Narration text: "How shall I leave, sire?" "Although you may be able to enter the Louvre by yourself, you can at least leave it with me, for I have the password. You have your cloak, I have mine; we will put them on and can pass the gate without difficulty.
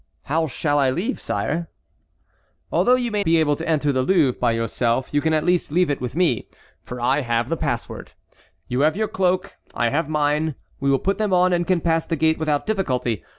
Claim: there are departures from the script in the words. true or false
false